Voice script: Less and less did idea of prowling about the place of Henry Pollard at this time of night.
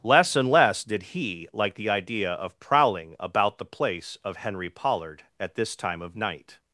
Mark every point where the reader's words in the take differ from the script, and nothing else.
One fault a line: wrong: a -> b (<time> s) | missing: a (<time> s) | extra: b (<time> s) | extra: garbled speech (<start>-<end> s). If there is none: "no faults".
extra: he like the (1.0 s)